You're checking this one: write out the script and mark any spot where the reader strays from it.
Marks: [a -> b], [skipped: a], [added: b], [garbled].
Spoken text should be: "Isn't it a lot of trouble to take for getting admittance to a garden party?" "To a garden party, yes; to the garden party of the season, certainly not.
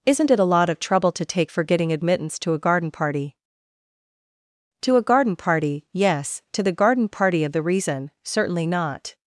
"Isn't it a lot of trouble to take for getting admittance to a garden party?" "To a garden party, yes; to the garden party of the [season, -> reason] certainly not.